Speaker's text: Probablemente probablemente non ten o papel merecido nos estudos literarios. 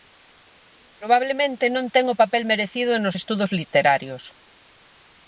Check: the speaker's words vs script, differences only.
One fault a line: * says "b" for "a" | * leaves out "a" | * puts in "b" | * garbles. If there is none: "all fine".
* leaves out "probablemente"